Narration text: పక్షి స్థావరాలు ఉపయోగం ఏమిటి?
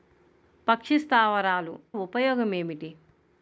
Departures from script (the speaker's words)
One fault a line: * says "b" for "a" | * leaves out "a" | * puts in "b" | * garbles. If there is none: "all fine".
all fine